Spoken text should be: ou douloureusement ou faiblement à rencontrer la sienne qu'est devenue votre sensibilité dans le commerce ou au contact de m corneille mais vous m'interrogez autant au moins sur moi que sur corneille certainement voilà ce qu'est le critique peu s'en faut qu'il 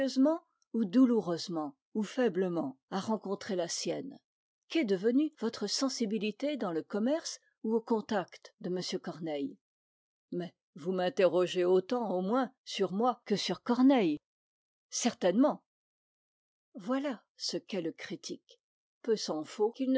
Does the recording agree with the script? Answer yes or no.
yes